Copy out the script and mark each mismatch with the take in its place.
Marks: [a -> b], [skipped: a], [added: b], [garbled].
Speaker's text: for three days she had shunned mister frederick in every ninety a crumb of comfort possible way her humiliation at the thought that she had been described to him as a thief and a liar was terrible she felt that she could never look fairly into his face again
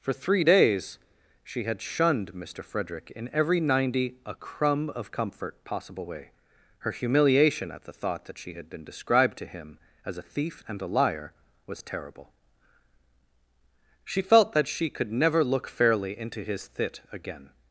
for three days she had shunned mister frederick in every ninety a crumb of comfort possible way her humiliation at the thought that she had been described to him as a thief and a liar was terrible she felt that she could never look fairly into his [face -> thit] again